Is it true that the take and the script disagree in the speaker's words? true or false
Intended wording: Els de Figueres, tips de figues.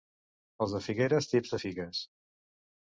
false